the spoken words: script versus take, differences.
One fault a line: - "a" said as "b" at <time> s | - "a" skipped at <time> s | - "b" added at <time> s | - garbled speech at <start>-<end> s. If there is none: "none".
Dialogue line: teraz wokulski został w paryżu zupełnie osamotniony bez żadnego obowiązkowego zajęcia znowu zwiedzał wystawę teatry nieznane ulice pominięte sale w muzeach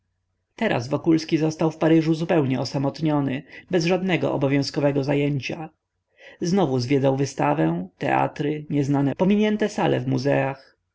- "ulice" skipped at 9.2 s